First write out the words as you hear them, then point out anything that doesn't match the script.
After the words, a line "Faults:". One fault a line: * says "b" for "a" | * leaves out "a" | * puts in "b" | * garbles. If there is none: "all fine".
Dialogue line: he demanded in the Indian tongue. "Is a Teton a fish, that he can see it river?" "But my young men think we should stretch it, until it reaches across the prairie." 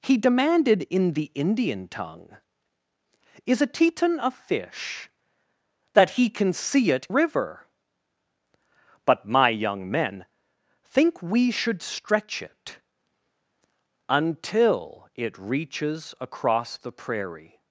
he demanded in the Indian tongue. "Is a Teton a fish, that he can see it river?" "But my young men think we should stretch it, until it reaches across the prairie."
Faults:
all fine